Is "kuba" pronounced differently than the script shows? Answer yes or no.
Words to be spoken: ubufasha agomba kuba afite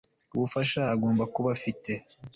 no